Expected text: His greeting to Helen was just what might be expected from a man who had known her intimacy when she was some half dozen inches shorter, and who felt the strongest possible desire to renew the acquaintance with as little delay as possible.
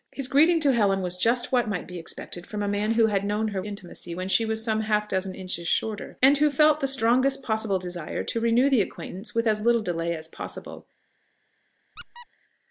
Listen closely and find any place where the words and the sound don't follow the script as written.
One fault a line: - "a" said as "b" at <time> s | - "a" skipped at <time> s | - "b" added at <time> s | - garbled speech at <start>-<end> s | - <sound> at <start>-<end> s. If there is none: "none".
- squeak at 12.0-12.3 s